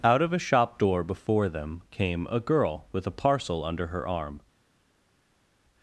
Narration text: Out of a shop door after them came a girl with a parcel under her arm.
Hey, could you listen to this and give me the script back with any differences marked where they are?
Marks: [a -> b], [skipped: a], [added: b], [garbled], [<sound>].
Out of a shop door [after -> before] them came a girl with a parcel under her arm.